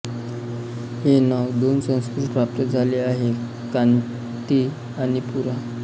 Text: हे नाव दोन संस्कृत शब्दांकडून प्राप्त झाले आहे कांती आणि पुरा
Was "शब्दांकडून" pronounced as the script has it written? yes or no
no